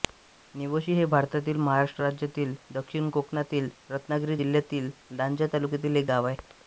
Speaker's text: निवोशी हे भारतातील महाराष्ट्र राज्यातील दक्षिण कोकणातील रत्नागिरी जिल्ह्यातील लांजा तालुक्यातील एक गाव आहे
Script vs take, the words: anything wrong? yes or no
no